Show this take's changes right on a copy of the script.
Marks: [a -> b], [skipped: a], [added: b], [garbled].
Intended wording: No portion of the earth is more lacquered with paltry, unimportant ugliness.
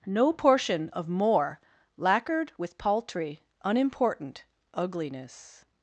No portion of [skipped: the earth is] more lacquered with paltry, unimportant ugliness.